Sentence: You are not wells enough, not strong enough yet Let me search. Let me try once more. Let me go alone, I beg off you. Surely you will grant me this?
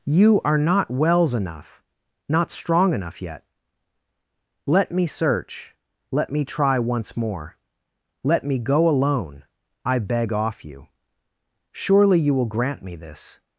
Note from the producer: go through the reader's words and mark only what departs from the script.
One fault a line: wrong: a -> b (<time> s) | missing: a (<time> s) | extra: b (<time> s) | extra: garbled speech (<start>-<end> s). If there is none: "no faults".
no faults